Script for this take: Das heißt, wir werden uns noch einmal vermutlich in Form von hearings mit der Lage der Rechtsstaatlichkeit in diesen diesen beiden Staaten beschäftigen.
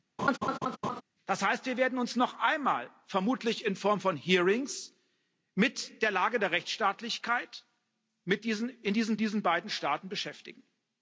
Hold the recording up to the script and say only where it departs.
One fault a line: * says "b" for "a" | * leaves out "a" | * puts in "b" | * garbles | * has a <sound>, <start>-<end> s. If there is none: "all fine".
* has a laugh, 0.2-1.0 s